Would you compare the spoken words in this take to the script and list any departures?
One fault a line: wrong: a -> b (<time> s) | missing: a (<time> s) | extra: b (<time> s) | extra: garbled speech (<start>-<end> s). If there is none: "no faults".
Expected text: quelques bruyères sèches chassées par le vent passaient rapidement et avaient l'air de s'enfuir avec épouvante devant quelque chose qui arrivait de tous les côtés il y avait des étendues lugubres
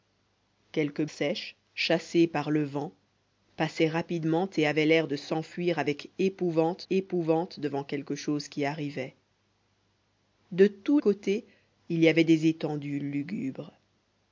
missing: bruyères (1.1 s)
extra: épouvante (6.9 s)
missing: les (11.0 s)